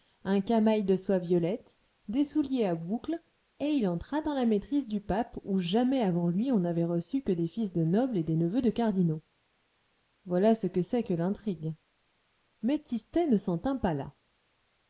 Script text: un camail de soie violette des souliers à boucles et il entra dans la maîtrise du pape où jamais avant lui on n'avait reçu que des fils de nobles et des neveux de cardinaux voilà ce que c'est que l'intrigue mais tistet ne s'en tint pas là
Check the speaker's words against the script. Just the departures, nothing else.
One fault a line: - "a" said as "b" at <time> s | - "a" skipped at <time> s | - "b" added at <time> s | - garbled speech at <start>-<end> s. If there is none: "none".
none